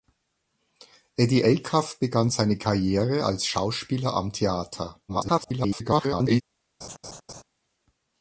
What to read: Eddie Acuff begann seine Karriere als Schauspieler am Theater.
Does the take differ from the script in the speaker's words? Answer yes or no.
yes